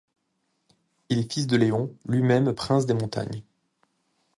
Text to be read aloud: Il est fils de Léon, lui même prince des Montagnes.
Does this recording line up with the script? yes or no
yes